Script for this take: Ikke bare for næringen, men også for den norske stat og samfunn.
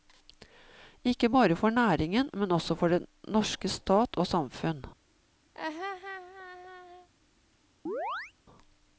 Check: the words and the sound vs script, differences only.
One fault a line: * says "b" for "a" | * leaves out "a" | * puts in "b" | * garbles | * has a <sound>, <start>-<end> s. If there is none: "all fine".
* has a laugh, 5.5-7.1 s
* has a chirp, 7.9-8.3 s